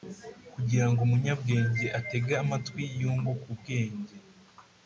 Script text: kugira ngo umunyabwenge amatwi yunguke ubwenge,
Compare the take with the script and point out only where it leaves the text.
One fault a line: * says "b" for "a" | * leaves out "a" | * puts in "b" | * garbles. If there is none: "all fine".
* puts in "atege"